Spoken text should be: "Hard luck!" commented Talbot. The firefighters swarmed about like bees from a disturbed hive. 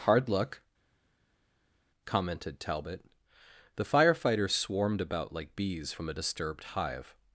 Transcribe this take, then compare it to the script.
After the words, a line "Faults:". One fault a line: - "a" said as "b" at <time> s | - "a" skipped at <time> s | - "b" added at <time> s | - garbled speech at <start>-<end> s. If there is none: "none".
"Hard luck!" commented Talbot. The firefighters swarmed about like bees from a disturbed hive.
Faults:
none